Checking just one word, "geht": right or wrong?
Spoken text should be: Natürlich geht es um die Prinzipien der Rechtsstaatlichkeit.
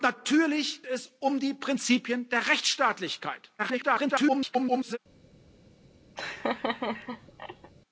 wrong